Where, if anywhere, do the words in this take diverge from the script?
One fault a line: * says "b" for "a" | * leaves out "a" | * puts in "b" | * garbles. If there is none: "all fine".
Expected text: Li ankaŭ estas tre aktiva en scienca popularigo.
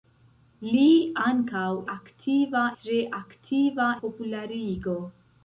* says "aktiva" for "estas"
* leaves out "en scienca"